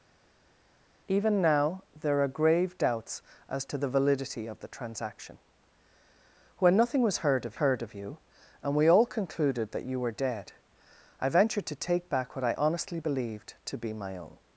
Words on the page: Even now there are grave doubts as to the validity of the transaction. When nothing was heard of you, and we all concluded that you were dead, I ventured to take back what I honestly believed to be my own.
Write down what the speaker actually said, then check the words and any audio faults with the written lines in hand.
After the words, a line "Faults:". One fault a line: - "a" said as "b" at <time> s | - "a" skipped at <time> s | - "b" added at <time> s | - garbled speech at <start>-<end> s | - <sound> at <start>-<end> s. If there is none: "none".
Even now there are grave doubts as to the validity of the transaction. When nothing was heard of heard of you, and we all concluded that you were dead, I ventured to take back what I honestly believed to be my own.
Faults:
- "heard of" added at 7.5 s